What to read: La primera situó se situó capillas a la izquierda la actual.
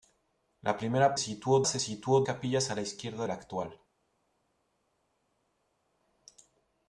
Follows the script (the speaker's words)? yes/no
yes